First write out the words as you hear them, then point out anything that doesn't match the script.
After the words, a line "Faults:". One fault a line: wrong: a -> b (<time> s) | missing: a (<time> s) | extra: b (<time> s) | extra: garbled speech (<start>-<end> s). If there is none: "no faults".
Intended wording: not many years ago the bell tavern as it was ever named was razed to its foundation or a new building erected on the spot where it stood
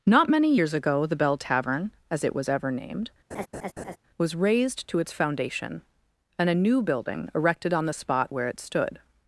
not many years ago the bell tavern as it was ever named was razed to its foundation and a new building erected on the spot where it stood
Faults:
wrong: or -> and (6.4 s)